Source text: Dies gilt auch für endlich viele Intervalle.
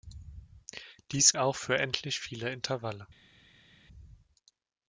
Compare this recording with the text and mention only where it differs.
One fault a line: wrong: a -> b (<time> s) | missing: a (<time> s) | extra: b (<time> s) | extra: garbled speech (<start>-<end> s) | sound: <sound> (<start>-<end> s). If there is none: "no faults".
missing: gilt (1.4 s)